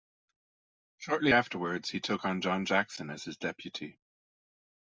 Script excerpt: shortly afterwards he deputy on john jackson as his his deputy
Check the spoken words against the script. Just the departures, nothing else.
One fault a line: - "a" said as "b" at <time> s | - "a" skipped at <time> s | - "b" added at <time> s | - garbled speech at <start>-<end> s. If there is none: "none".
- "deputy" said as "took" at 2.0 s
- "his" skipped at 3.4 s